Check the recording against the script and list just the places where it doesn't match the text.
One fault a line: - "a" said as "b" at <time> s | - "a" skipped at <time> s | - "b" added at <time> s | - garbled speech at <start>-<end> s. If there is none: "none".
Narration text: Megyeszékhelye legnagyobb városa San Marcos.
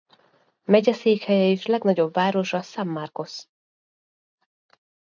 - "és" added at 1.5 s